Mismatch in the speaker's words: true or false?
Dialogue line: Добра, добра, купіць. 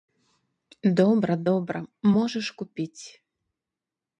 true